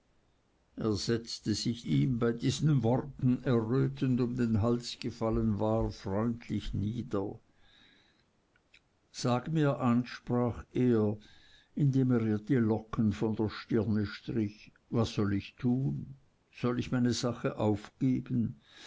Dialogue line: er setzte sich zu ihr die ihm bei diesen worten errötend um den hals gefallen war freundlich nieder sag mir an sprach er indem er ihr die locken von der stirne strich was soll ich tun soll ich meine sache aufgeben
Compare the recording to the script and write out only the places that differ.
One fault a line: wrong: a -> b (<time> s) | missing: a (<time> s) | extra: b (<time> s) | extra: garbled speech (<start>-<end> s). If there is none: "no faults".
missing: zu ihr die (1.9 s)